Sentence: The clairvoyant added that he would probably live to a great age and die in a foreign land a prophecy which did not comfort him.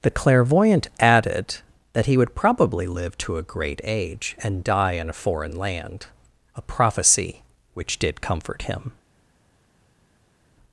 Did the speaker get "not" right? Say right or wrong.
wrong